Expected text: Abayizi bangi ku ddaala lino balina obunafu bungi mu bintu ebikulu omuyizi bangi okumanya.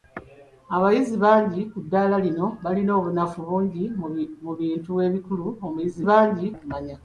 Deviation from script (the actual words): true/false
false